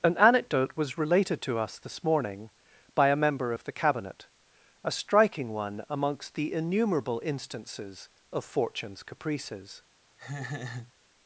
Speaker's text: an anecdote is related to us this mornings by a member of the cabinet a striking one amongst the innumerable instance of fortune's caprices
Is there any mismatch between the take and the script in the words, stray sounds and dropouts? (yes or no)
yes